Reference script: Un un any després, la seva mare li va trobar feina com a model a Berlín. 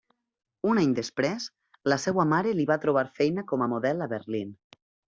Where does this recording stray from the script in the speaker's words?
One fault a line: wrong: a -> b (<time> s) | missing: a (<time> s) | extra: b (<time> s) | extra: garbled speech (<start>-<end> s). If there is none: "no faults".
missing: un (0.8 s)